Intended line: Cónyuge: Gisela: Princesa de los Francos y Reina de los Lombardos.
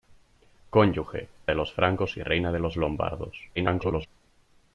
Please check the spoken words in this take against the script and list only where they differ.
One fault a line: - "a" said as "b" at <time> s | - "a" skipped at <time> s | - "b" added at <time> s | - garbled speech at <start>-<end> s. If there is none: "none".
- "Gisela Princesa" skipped at 1.3 s
- garbled speech at 3.6-4.1 s